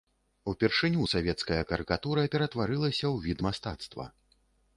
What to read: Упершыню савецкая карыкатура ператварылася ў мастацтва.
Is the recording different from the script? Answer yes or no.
yes